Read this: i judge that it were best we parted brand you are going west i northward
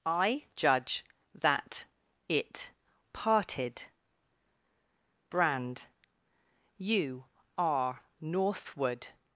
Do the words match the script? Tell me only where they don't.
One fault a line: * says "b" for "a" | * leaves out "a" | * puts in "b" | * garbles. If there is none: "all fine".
* leaves out "were best we"
* leaves out "going west i"